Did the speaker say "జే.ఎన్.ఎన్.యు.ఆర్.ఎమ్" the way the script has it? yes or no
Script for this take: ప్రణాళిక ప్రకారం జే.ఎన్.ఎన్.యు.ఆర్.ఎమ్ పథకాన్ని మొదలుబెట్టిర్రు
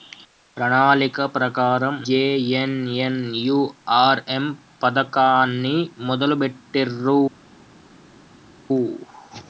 yes